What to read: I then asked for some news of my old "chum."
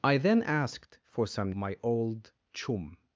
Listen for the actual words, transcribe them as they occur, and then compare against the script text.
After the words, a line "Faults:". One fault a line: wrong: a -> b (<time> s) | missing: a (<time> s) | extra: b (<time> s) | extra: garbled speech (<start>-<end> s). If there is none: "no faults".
I then asked for some my old "chum."
Faults:
missing: news of (1.5 s)